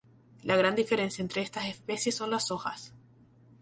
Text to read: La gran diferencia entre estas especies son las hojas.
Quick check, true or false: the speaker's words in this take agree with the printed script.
true